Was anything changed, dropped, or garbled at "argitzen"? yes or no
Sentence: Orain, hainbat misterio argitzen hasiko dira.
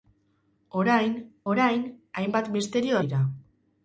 yes